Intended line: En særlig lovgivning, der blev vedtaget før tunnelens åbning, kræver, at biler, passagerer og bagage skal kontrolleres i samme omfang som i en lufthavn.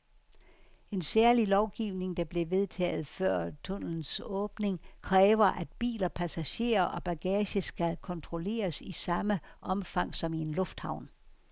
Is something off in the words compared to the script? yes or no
no